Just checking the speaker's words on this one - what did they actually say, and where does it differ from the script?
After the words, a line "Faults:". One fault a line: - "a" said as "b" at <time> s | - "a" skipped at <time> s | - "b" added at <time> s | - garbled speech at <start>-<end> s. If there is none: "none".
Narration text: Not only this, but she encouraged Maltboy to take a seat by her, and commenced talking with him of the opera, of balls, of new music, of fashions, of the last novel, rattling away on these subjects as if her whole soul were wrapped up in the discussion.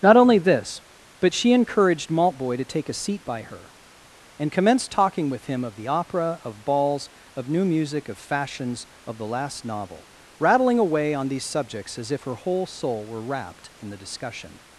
Not only this, but she encouraged Maltboy to take a seat by her, and commenced talking with him of the opera, of balls, of new music, of fashions, of the last novel, rattling away on these subjects as if her whole soul were wrapped in the discussion.
Faults:
- "up" skipped at 13.7 s